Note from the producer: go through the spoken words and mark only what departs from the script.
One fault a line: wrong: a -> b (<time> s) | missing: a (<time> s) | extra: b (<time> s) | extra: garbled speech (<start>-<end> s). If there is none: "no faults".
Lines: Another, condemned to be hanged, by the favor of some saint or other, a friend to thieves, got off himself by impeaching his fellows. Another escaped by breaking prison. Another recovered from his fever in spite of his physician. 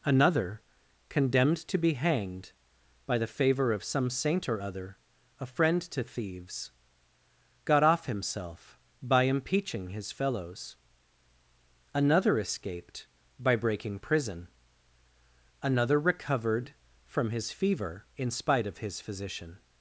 no faults